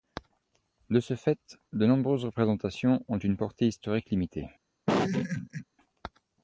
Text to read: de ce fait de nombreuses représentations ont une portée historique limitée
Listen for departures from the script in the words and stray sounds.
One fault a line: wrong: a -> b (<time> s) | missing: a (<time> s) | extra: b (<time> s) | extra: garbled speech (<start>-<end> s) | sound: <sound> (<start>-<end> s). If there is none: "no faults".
sound: laugh (4.9-5.6 s)